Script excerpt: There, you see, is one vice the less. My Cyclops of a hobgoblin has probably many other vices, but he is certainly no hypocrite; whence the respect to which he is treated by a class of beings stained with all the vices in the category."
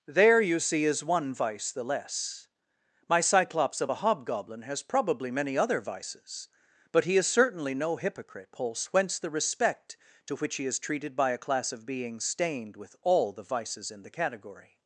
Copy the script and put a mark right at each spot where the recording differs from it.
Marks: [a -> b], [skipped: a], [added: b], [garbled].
There, you see, is one vice the less. My Cyclops of a hobgoblin has probably many other vices, but he is certainly no hypocrite; [added: pulse] whence the respect to which he is treated by a class of beings stained with all the vices in the category."